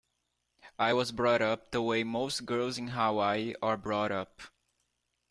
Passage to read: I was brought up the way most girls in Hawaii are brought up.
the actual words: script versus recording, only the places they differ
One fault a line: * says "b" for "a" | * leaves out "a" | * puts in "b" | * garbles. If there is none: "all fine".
all fine